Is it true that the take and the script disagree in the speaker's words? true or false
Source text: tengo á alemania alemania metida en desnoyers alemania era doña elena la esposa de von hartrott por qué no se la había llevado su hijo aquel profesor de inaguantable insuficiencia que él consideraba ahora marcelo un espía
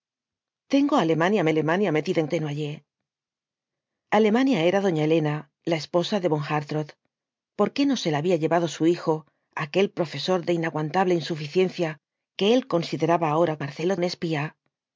false